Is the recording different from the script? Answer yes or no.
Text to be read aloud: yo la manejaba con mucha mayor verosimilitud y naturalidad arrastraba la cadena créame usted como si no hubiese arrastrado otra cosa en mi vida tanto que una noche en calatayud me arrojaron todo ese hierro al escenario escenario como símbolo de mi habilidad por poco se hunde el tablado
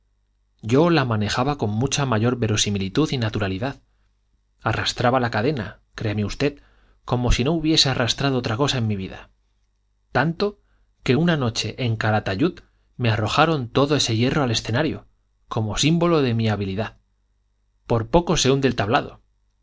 yes